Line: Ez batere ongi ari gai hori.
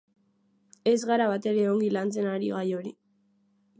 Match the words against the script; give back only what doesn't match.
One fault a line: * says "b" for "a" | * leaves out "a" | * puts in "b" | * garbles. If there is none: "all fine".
* puts in "gara"
* puts in "lantzen"